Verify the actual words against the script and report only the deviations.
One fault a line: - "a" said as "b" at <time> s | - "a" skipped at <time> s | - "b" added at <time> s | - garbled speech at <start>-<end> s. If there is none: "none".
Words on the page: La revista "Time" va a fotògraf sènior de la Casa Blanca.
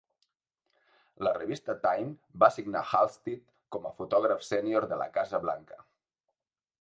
- "assignar Halstead com" added at 2.5 s